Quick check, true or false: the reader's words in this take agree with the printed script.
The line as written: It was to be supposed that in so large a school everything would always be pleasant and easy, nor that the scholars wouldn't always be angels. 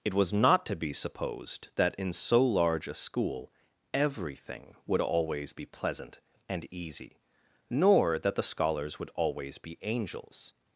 false